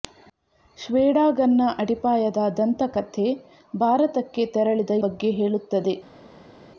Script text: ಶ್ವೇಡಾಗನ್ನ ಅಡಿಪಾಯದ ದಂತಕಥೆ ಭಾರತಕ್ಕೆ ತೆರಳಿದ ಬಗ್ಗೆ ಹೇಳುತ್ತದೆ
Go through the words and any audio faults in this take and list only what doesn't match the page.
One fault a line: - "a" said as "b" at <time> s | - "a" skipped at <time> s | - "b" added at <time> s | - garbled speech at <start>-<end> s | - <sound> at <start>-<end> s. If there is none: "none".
none